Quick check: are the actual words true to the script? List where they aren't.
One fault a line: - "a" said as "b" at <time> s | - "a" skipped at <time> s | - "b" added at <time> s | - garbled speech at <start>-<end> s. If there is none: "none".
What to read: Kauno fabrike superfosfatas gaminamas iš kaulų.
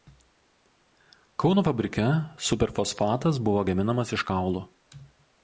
- "buvo" added at 3.5 s